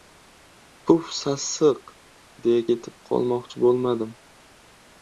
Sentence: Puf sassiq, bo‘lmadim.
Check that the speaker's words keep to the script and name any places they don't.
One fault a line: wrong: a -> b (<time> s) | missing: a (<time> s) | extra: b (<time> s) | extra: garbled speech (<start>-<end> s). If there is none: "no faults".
extra: deya ketib qolmoqchi (2.5 s)